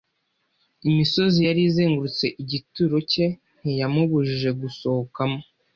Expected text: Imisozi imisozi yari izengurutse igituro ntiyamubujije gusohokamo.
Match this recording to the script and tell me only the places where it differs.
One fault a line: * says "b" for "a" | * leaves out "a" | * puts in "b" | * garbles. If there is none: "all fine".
* leaves out "imisozi"
* puts in "cye"